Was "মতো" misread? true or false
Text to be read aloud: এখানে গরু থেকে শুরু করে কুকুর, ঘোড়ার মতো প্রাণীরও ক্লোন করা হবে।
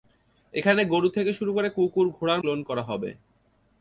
true